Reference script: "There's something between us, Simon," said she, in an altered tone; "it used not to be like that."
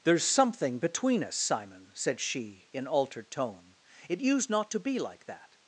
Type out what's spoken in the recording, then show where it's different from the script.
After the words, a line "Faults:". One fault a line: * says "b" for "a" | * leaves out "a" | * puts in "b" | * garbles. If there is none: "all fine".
"There's something between us, Simon," said she, in altered tone; "it used not to be like that."
Faults:
* leaves out "an"